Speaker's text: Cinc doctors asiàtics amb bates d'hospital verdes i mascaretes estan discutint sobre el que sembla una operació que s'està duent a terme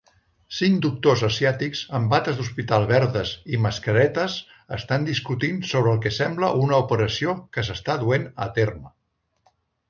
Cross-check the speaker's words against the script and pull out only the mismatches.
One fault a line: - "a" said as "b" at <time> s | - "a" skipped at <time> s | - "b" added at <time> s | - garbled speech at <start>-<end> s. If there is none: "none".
none